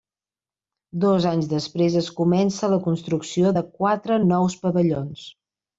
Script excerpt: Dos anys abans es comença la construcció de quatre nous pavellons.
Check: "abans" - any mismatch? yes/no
yes